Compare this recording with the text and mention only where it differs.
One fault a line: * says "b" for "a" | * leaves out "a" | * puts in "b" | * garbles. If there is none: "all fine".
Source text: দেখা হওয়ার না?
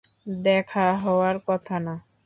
* puts in "কথা"